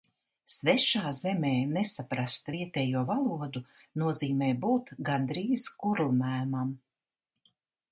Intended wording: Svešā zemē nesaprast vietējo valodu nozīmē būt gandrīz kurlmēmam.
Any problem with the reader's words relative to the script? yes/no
no